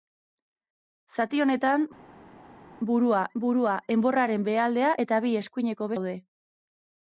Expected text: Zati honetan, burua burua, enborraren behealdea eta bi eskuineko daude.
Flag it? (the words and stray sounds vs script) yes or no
no